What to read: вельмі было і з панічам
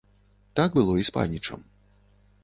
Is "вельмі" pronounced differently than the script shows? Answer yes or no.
yes